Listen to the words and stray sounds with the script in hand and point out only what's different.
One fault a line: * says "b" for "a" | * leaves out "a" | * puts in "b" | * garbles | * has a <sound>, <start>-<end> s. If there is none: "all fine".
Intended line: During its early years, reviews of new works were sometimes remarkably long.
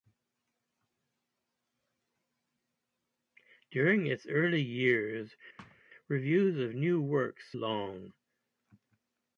* has a thud, 5.6-5.8 s
* leaves out "were sometimes remarkably"